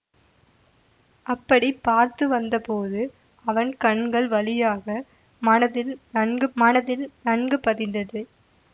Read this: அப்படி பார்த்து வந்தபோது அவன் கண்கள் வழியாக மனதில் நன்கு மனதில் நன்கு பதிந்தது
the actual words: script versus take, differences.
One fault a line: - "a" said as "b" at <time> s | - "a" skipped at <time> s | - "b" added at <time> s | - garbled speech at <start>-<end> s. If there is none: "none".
none